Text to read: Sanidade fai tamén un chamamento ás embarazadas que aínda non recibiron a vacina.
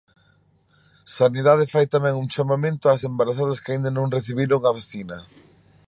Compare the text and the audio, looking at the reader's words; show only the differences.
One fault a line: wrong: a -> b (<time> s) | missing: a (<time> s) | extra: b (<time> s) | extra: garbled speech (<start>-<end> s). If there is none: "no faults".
no faults